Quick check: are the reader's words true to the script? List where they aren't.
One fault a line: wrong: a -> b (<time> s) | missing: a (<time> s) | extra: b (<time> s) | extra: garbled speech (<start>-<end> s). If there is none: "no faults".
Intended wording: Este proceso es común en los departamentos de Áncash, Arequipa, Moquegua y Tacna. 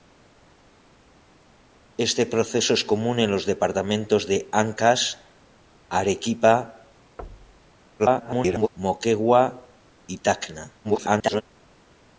extra: garbled speech (8.0-8.7 s)
extra: garbled speech (10.8-11.4 s)